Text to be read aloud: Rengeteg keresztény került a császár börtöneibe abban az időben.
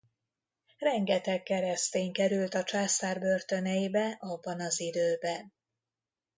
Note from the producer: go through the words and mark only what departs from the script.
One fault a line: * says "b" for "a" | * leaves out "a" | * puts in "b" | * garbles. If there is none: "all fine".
all fine